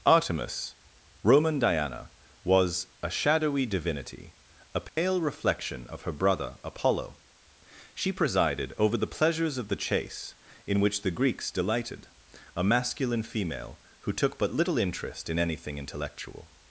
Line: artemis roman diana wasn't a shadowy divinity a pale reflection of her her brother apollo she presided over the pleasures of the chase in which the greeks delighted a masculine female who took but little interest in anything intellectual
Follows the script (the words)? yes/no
no